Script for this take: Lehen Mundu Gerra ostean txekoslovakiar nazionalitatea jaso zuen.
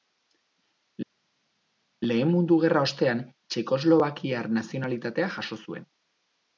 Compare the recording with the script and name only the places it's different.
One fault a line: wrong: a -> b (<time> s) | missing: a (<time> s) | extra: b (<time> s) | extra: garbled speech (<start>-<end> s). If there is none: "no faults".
no faults